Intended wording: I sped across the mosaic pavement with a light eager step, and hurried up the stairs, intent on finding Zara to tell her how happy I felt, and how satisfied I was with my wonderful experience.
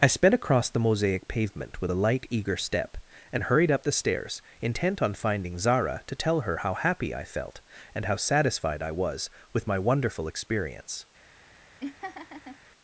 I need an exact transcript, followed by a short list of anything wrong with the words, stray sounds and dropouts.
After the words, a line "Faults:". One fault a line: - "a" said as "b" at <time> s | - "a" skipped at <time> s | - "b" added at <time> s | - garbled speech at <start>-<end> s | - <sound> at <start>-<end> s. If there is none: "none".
I sped across the mosaic pavement with a light eager step, and hurried up the stairs, intent on finding Zara to tell her how happy I felt, and how satisfied I was with my wonderful experience.
Faults:
- laugh at 11.8-12.6 s